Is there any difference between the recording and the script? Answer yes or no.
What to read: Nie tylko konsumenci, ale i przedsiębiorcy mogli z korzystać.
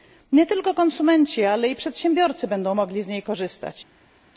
yes